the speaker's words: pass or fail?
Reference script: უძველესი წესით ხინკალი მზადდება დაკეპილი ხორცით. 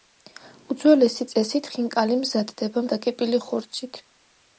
pass